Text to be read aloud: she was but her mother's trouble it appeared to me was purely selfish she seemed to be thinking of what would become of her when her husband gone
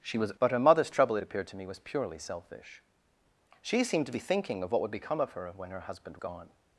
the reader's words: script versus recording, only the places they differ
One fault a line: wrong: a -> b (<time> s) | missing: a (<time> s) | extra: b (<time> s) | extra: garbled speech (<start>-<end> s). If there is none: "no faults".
no faults